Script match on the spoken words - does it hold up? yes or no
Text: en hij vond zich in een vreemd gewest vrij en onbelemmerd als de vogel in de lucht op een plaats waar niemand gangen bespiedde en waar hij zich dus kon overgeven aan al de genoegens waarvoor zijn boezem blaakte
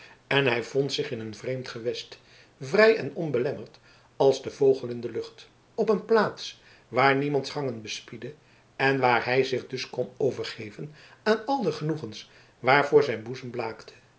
yes